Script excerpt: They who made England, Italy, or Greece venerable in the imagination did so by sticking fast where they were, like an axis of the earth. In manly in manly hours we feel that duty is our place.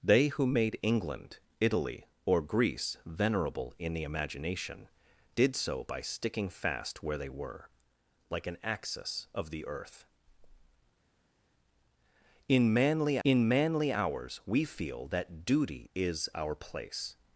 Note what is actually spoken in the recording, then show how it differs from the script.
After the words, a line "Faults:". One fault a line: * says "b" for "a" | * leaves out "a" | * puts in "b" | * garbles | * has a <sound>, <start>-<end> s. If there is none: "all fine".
They who made England, Italy, or Greece venerable in the imagination did so by sticking fast where they were, like an axis of the earth. In manly in manly hours we feel that duty is our place.
Faults:
all fine